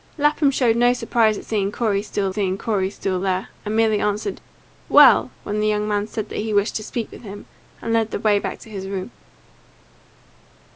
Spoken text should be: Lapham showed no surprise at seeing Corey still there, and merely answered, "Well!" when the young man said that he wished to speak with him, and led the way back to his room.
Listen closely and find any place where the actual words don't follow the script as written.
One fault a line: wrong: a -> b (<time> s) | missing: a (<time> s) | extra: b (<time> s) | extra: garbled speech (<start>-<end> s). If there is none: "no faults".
extra: seeing Corey still (2.3 s)